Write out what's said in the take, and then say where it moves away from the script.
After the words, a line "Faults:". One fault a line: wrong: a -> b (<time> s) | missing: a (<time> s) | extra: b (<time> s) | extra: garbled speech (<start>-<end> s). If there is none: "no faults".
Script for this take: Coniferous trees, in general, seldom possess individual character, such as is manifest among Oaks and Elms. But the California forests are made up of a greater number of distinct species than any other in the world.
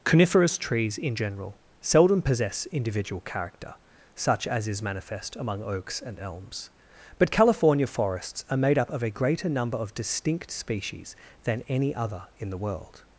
Coniferous trees, in general, seldom possess individual character, such as is manifest among Oaks and Elms. But California forests are made up of a greater number of distinct species than any other in the world.
Faults:
missing: the (7.3 s)